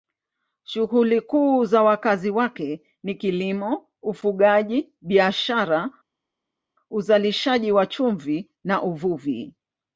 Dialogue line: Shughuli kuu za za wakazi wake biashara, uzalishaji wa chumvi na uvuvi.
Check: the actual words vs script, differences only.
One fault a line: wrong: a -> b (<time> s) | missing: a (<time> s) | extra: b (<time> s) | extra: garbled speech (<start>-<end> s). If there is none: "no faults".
missing: za (1.8 s)
extra: ni kilimo ufugaji (3.0 s)